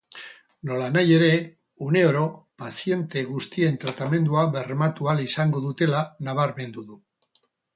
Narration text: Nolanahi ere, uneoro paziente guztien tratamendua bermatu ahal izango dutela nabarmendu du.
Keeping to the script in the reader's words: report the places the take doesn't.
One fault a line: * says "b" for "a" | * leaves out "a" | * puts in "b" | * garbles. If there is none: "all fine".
all fine